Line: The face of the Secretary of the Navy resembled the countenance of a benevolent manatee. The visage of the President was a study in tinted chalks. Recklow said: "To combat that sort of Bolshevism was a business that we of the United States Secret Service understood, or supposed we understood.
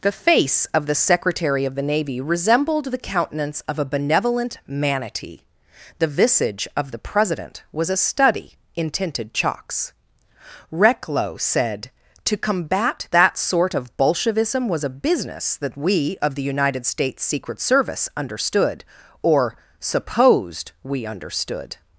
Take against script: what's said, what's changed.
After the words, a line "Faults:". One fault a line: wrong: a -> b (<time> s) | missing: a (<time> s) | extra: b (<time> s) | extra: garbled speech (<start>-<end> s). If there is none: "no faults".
The face of the Secretary of the Navy resembled the countenance of a benevolent manatee. The visage of the President was a study in tinted chalks. Recklow said: "To combat that sort of Bolshevism was a business that we of the United States Secret Service understood, or supposed we understood.
Faults:
no faults